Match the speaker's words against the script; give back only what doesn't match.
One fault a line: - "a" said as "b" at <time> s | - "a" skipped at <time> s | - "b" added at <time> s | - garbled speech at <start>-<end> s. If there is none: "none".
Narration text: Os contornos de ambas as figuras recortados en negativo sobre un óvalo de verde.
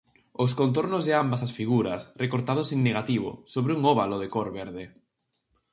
- "cor" added at 4.3 s